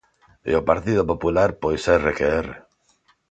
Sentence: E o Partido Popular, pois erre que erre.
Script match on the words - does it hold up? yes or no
yes